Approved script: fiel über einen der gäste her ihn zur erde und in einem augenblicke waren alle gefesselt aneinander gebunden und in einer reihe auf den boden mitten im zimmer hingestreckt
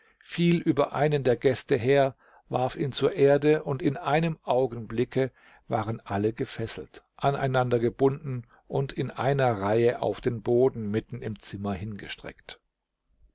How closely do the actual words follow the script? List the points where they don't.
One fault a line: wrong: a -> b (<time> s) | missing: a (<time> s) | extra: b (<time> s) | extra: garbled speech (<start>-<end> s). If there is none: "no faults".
extra: warf (2.5 s)